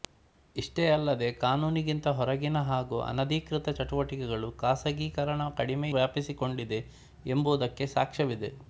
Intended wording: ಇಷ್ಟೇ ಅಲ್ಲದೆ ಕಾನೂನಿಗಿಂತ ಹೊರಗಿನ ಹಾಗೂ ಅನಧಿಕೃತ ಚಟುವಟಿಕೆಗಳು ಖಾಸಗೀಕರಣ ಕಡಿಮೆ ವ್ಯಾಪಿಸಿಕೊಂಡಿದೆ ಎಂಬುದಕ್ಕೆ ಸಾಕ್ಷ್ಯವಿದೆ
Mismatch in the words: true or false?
false